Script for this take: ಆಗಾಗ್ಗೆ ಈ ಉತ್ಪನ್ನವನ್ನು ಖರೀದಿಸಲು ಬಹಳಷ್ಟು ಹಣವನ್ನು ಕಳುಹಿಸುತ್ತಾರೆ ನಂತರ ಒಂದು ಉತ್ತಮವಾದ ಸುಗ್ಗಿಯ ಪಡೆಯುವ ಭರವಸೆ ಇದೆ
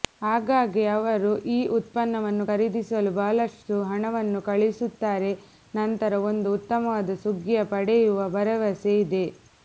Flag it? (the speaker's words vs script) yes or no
yes